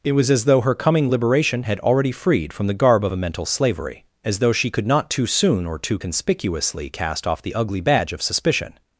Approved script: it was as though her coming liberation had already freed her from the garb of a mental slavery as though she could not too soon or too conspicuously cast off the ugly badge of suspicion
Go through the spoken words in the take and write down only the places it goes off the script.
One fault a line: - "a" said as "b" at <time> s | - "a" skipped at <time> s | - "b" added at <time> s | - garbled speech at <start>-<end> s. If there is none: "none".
- "her" skipped at 2.5 s